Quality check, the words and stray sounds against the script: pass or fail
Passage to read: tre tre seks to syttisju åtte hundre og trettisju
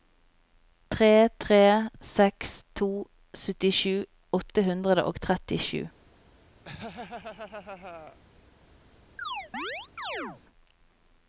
fail